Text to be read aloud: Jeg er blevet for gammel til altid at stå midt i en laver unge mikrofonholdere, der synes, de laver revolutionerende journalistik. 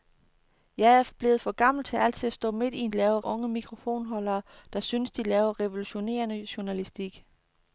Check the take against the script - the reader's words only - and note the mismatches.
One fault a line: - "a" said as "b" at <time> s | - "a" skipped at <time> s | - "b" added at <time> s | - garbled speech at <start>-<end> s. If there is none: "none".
none